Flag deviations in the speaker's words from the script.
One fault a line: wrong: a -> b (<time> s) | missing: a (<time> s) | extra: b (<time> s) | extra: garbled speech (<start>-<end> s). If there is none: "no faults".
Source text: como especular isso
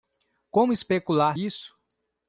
no faults